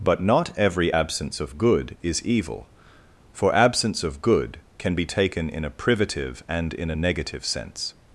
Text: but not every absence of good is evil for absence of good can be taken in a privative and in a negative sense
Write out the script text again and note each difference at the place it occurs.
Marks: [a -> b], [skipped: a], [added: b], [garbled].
but not every absence of good is evil for absence of good can be taken in a privative and in a negative sense